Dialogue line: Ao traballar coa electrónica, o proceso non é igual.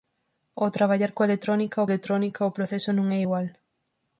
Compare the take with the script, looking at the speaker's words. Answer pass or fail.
fail